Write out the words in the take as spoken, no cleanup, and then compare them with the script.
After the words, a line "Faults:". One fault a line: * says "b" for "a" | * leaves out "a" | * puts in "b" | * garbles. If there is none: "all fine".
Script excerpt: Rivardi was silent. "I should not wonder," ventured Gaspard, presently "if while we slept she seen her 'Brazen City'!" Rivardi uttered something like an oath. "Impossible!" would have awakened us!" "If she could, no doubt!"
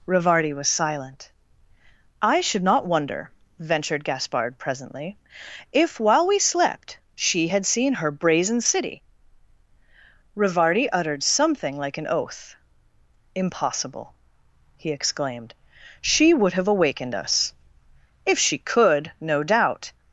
Rivardi was silent. "I should not wonder," ventured Gaspard, presently "if while we slept she had seen her 'Brazen City'!" Rivardi uttered something like an oath. "Impossible!" he exclaimed "She would have awakened us!" "If she could, no doubt!"
Faults:
* puts in "had"
* puts in "he exclaimed She"